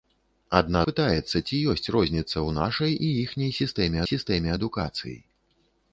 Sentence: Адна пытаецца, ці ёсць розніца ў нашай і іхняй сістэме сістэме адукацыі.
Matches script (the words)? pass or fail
pass